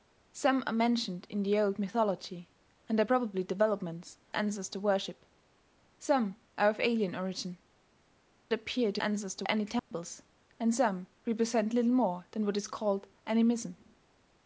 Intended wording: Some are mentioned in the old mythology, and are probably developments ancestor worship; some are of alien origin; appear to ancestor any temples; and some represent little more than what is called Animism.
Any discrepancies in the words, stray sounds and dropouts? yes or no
yes